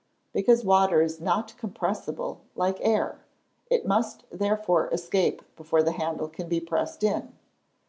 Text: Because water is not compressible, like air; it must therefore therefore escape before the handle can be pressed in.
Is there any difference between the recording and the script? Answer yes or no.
yes